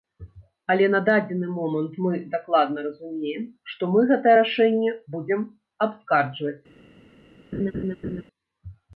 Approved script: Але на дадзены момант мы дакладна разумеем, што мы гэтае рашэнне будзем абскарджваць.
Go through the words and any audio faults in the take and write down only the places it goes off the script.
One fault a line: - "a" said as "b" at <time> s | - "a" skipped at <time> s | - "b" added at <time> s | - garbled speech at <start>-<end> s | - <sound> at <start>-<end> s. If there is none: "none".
- laugh at 7.5-8.2 s